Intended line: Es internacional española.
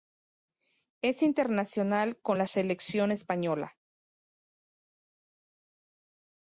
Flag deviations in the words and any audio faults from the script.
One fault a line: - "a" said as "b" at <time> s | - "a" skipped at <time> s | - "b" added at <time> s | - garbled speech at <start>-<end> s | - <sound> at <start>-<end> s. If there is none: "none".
- "con la Selección" added at 2.2 s